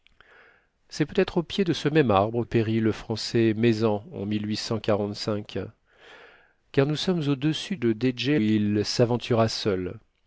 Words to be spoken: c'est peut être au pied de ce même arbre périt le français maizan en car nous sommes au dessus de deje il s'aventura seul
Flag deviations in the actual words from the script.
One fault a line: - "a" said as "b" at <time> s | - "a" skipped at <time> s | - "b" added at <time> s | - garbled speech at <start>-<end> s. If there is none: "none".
none